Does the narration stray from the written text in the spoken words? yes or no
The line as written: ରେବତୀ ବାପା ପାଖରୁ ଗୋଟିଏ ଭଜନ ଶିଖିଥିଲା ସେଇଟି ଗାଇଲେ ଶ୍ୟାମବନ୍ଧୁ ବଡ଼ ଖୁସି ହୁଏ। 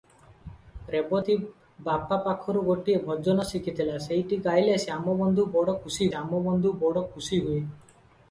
yes